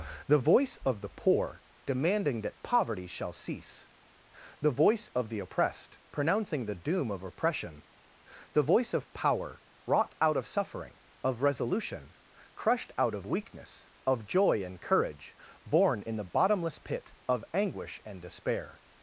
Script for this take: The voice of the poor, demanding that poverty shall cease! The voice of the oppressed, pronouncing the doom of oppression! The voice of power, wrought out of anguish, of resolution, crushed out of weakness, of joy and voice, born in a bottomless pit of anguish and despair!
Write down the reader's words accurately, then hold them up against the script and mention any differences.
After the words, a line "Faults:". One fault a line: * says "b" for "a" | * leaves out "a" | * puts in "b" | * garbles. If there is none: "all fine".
The voice of the poor, demanding that poverty shall cease! The voice of the oppressed, pronouncing the doom of oppression! The voice of power, wrought out of suffering, of resolution, crushed out of weakness, of joy and courage, born in the bottomless pit of anguish and despair!
Faults:
* says "suffering" for "anguish"
* says "courage" for "voice"
* says "the" for "a"